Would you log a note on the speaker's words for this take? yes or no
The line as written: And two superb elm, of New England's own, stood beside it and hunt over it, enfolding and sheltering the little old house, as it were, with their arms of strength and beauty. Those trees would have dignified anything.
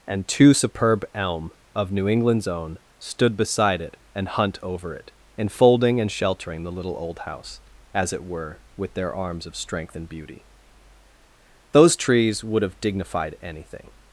no